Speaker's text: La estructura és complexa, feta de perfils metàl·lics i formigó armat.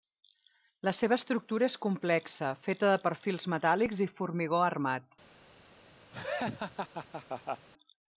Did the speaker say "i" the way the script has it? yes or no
yes